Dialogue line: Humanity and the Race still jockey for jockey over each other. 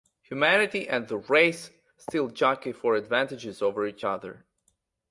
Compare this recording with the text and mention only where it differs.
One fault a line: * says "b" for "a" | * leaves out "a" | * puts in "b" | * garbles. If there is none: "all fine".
* says "advantages" for "jockey"